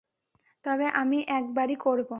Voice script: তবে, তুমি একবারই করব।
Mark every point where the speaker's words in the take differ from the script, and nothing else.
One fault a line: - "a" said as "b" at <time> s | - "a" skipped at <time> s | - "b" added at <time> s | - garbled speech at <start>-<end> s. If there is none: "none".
- "তুমি" said as "আমি" at 0.9 s